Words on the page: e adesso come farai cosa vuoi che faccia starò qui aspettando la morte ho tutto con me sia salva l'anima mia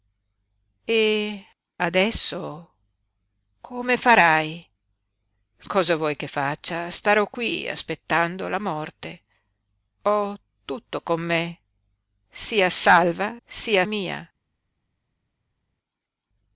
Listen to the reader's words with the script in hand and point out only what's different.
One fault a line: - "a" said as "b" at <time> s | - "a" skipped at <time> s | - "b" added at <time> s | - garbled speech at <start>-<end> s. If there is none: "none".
- "l'anima" said as "sia" at 13.5 s